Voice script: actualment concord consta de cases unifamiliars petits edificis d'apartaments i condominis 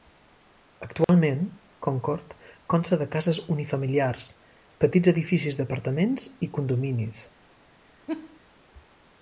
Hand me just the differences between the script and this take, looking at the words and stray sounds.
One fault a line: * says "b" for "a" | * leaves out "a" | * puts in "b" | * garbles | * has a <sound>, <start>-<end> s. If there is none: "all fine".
* has a dropout, 1.0-1.1 s
* has a laugh, 8.1-8.4 s